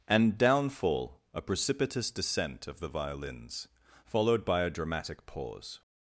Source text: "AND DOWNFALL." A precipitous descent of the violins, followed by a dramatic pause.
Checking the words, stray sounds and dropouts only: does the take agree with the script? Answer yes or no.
yes